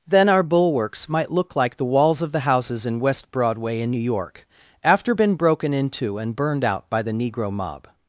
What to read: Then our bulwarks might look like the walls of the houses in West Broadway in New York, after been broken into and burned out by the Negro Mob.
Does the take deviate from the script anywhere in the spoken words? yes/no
no